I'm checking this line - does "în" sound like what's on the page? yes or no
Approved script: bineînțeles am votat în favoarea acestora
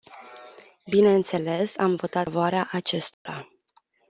no